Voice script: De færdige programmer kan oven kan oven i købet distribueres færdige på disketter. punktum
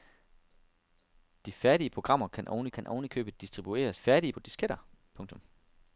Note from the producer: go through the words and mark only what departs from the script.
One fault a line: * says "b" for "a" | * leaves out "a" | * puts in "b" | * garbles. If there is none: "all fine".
all fine